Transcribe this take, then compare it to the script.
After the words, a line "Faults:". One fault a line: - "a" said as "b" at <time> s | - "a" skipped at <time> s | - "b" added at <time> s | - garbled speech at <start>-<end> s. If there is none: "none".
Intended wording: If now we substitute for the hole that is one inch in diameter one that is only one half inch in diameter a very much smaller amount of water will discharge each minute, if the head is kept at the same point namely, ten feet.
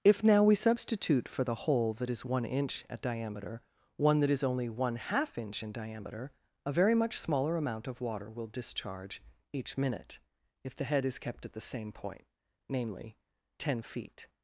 If now we substitute for the hole that is one inch at diameter one that is only one half inch in diameter a very much smaller amount of water will discharge each minute, if the head is kept at the same point namely, ten feet.
Faults:
- "in" said as "at" at 2.9 s